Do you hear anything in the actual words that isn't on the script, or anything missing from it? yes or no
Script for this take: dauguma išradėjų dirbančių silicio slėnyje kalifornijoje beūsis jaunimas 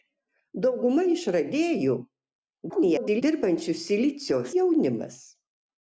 yes